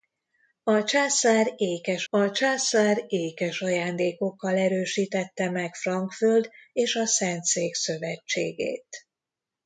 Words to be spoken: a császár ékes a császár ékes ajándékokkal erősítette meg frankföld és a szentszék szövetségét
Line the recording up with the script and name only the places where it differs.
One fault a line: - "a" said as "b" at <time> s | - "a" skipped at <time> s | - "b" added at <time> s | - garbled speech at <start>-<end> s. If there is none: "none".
none